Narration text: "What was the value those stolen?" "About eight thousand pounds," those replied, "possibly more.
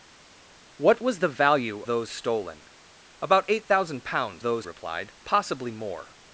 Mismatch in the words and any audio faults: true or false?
false